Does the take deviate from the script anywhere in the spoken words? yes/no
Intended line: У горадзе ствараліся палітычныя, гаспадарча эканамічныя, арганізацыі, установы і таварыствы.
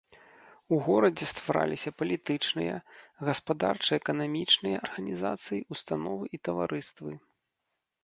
no